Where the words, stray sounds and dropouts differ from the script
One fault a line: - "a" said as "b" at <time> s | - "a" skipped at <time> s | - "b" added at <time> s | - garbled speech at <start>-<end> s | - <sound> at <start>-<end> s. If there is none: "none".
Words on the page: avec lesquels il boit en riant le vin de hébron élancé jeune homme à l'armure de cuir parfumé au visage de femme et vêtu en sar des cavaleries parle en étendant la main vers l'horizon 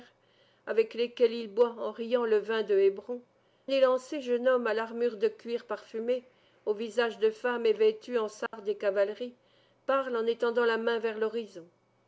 - dropout at 8.5-8.5 s